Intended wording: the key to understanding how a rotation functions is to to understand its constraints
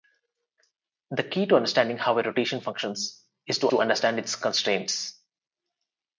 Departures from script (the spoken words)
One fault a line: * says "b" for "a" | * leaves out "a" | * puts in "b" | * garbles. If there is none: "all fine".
all fine